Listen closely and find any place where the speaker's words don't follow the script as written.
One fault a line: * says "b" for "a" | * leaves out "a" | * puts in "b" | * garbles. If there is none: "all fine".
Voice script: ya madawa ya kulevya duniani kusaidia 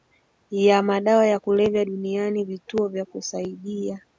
* puts in "vituo vya"